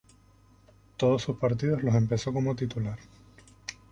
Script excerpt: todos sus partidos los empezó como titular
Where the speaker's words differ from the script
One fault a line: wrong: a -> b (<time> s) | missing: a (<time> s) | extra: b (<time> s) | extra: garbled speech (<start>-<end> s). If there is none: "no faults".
no faults